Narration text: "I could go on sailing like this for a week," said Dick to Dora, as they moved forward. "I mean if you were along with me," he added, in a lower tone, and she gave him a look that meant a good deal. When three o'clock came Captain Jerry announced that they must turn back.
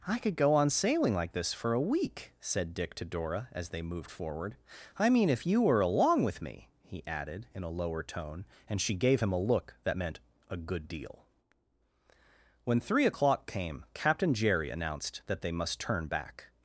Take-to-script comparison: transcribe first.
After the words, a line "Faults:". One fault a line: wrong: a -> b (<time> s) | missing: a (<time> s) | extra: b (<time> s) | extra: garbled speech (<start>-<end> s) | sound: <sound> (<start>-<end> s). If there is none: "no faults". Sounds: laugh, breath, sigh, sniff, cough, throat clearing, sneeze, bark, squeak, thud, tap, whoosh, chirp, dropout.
"I could go on sailing like this for a week," said Dick to Dora, as they moved forward. "I mean if you were along with me," he added, in a lower tone, and she gave him a look that meant a good deal. When three o'clock came Captain Jerry announced that they must turn back.
Faults:
no faults